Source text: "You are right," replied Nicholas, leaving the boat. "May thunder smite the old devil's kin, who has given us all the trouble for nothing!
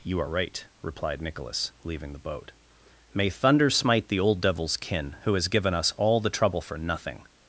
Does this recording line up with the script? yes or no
yes